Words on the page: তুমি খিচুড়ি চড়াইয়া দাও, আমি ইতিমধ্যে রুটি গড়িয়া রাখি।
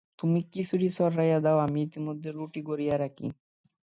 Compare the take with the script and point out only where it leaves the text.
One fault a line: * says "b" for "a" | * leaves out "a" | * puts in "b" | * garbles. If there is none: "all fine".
all fine